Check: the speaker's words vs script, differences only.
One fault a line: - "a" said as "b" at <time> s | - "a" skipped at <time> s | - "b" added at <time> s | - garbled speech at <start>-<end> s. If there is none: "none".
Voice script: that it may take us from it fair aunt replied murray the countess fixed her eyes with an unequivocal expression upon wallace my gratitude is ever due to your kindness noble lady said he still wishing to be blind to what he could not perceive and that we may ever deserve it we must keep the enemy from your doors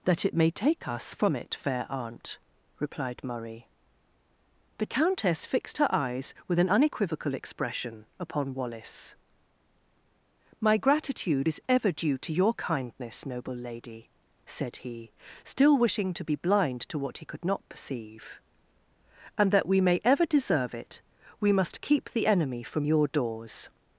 none